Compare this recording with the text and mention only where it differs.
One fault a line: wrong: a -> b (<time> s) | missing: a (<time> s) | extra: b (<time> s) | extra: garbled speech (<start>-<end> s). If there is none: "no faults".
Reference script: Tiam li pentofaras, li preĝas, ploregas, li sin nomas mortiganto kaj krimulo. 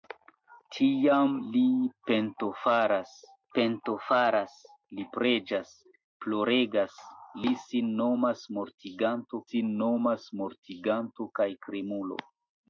extra: pentofaras (3.6 s)
extra: sin nomas mortiganto (9.5 s)